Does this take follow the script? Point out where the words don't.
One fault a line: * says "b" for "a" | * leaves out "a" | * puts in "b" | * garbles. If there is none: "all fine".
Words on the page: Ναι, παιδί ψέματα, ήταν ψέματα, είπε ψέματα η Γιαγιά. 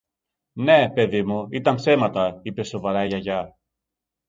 * says "μου" for "ψέματα"
* says "σοβαρά" for "ψέματα"